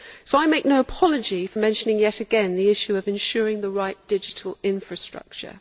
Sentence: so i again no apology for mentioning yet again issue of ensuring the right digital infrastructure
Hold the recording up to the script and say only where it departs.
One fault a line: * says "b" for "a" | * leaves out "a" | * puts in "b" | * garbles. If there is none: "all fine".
* says "make" for "again"
* puts in "the"